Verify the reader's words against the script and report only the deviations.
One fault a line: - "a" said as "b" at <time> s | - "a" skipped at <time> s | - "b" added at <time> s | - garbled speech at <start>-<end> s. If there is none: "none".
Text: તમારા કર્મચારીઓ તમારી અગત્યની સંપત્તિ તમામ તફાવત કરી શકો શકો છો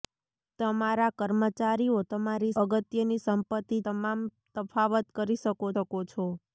none